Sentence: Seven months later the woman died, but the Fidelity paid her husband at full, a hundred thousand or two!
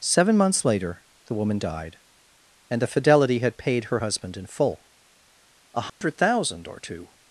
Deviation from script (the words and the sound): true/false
true